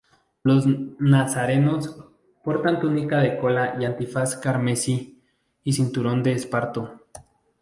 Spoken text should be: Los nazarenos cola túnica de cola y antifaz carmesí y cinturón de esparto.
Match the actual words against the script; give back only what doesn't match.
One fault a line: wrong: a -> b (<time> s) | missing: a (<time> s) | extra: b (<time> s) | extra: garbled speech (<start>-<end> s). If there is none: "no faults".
wrong: cola -> portan (2.4 s)